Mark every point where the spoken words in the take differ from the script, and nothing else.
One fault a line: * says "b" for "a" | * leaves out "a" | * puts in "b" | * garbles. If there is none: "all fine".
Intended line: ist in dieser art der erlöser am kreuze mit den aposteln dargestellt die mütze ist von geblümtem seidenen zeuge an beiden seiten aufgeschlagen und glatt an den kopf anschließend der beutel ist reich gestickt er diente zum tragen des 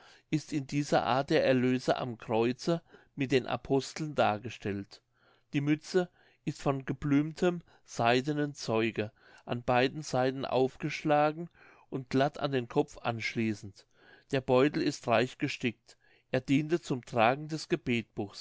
all fine